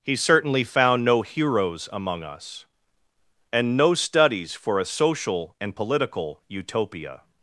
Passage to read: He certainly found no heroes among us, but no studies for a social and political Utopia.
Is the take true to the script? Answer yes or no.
no